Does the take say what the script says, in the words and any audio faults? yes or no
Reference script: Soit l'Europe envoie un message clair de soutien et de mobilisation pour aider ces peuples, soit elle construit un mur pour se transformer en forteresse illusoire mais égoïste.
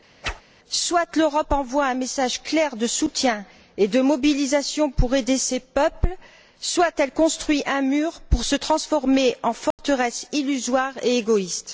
no